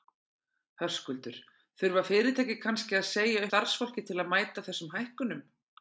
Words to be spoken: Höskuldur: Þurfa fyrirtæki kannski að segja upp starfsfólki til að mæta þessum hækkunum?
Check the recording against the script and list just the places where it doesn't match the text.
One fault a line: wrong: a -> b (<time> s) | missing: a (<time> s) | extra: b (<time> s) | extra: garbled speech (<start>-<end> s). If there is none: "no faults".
missing: upp (3.5 s)